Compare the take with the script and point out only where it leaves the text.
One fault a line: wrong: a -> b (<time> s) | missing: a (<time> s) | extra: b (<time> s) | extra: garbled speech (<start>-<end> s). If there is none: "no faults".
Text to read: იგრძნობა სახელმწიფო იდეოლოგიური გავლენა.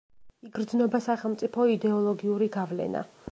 no faults